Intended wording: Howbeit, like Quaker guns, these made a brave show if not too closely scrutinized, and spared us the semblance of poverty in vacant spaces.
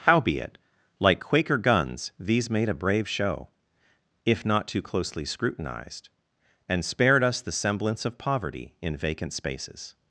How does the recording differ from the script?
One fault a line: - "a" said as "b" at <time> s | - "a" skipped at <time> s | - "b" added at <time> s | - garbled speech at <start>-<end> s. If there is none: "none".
none